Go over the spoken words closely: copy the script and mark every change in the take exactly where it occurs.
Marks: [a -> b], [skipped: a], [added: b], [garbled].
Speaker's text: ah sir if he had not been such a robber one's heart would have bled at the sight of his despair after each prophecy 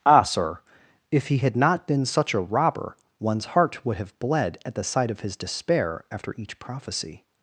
ah sir if he had not been such a robber one's heart would have bled at the sight of his despair after each prophecy